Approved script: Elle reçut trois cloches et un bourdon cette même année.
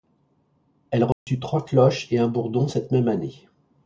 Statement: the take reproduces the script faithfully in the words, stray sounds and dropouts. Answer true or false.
false